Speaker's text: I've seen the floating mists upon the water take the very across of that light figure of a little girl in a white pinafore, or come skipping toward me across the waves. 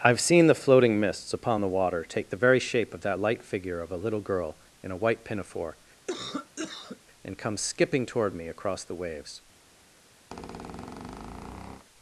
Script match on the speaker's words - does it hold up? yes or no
no